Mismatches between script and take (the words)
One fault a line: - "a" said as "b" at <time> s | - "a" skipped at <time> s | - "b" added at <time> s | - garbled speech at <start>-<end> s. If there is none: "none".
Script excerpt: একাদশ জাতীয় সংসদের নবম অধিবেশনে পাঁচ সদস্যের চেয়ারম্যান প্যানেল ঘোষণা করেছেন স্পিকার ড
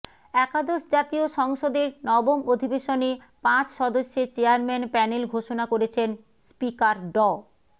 none